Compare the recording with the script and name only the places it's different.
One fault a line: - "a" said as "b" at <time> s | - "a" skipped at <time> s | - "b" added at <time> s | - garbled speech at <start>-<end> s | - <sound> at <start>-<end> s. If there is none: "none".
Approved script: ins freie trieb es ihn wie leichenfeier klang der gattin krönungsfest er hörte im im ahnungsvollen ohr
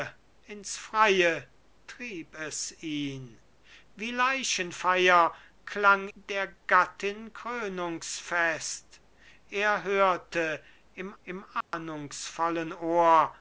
- dropout at 11.6-11.7 s